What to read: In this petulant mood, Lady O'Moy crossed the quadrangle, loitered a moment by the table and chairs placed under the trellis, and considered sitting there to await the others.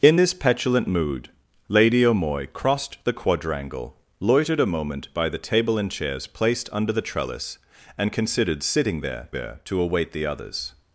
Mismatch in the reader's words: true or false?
true